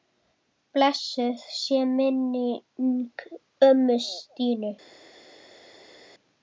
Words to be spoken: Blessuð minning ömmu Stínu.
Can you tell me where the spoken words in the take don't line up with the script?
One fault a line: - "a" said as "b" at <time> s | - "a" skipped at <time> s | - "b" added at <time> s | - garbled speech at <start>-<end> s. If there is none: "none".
- "sé" added at 1.6 s